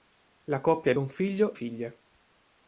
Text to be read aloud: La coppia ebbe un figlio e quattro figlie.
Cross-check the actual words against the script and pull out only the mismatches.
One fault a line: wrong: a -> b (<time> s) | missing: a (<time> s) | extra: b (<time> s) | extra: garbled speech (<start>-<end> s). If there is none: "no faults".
missing: ebbe (0.9 s)
missing: e quattro (1.6 s)